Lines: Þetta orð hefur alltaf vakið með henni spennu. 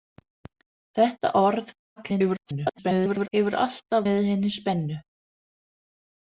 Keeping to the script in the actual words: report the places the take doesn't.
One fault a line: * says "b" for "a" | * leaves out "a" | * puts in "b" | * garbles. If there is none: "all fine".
* garbles
* leaves out "vakið"